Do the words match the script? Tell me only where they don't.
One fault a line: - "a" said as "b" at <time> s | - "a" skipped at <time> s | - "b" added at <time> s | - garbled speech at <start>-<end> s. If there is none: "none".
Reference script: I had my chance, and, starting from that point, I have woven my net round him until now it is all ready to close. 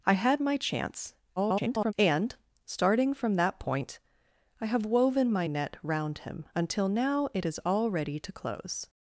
- garbled speech at 1.4-1.9 s